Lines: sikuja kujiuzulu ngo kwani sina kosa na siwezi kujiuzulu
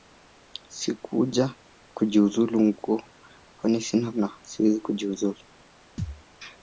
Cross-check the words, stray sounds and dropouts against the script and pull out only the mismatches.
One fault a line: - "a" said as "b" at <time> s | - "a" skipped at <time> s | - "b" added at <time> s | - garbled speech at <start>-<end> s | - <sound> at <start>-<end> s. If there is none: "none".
- "kosa" skipped at 4.1 s
- thud at 6.0-6.2 s